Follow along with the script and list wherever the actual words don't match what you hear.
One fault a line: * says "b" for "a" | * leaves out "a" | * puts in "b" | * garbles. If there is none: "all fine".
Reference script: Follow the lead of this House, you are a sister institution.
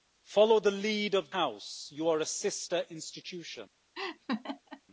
* leaves out "this"